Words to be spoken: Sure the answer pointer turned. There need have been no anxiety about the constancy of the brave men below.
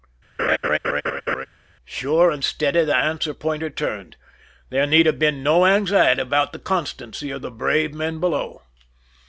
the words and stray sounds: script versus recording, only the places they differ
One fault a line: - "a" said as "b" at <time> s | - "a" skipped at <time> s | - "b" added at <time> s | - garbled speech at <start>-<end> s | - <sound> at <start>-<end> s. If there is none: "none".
- laugh at 0.4-1.5 s
- "and steady" added at 2.3 s